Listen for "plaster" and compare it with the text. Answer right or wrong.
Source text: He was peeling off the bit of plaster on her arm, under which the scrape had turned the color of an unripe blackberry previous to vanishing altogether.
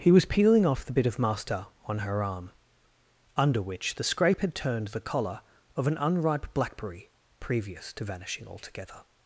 wrong